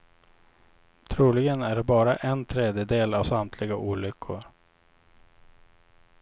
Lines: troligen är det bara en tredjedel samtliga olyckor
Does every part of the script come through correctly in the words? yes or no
no